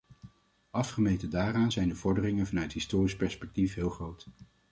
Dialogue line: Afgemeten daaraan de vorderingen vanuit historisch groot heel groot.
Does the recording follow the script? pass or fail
fail